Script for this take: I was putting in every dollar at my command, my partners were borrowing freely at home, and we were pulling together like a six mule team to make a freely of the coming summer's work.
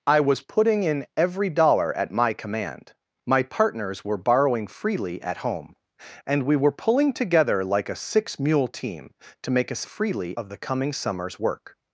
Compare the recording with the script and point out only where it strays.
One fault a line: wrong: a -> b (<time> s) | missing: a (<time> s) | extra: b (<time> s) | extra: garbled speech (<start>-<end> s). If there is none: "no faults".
no faults